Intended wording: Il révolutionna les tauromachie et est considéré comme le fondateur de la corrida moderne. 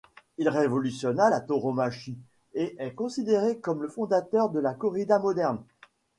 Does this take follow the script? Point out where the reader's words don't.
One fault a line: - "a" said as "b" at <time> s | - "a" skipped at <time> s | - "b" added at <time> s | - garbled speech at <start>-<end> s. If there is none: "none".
- "les" said as "la" at 1.3 s